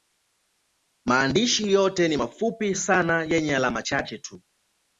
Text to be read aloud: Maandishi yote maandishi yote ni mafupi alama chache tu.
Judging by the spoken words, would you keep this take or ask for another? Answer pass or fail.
fail